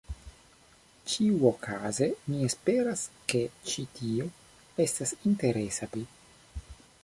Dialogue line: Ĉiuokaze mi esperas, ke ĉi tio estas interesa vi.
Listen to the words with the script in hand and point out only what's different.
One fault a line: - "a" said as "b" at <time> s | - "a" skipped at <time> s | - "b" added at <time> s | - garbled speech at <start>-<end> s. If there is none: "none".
none